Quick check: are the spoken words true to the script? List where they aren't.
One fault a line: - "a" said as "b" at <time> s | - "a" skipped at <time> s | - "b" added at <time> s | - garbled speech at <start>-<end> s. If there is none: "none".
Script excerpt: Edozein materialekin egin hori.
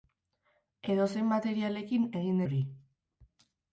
none